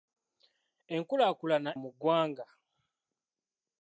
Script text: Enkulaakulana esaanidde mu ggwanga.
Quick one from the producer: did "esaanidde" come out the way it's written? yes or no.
no